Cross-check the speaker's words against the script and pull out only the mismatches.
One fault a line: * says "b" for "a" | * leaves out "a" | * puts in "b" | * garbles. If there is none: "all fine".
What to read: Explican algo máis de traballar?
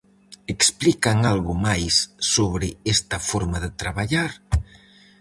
* puts in "sobre esta forma"